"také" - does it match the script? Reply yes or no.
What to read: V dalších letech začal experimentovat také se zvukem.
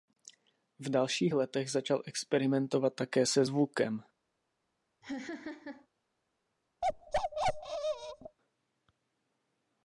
yes